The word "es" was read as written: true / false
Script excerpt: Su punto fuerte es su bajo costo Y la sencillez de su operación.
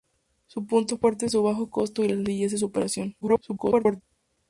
true